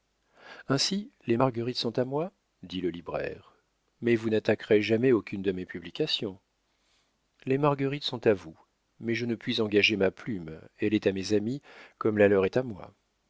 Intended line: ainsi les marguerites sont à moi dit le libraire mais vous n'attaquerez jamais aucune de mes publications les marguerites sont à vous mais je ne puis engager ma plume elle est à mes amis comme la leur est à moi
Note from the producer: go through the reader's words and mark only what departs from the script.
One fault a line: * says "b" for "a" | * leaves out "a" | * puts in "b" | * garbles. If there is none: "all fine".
all fine